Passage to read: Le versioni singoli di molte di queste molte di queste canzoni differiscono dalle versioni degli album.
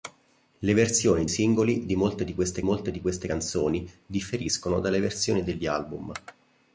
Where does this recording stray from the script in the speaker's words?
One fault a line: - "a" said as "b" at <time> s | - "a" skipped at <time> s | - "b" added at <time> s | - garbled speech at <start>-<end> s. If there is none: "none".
none